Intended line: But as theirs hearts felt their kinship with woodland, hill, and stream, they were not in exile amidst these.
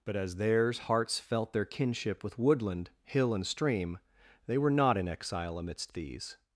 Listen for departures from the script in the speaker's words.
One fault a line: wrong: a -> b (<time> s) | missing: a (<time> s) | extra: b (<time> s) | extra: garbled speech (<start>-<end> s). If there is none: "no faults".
no faults